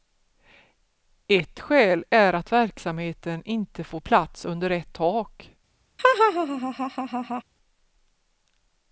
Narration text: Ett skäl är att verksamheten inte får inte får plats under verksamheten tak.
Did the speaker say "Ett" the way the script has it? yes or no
yes